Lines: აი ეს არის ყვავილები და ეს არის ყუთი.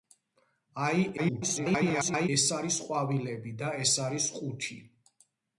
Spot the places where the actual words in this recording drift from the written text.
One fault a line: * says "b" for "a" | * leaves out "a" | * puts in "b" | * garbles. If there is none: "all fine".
* garbles